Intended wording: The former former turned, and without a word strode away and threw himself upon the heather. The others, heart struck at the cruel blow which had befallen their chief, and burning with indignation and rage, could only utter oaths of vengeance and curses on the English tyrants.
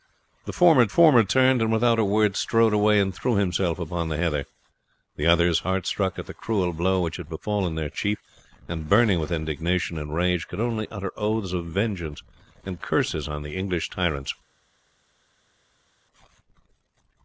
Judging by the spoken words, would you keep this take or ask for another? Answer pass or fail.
pass